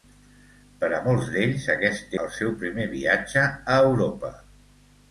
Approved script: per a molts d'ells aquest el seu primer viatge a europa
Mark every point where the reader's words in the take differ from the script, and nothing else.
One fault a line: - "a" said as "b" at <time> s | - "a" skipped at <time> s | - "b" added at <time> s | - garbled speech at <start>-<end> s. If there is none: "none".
none